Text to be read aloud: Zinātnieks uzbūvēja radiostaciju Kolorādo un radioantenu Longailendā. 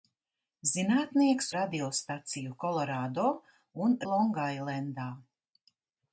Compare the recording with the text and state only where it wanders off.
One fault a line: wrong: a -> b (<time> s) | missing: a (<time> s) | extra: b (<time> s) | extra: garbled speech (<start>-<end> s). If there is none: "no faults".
missing: uzbūvēja (1.5 s)
missing: radioantenu (3.9 s)